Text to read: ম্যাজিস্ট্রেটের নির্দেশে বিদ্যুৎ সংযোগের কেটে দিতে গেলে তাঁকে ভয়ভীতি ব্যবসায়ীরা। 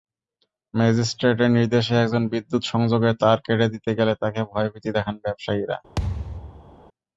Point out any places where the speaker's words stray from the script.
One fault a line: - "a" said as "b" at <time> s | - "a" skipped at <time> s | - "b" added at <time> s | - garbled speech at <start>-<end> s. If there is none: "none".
- "একজন" added at 2.0 s
- "তার" added at 3.2 s
- "দেখান" added at 5.0 s